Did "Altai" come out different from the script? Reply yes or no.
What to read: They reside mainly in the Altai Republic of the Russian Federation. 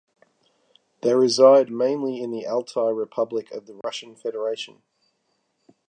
no